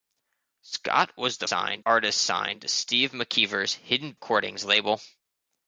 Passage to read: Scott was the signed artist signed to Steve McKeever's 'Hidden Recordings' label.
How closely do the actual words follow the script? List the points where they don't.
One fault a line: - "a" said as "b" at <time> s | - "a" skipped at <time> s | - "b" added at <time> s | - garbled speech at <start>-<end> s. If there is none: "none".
none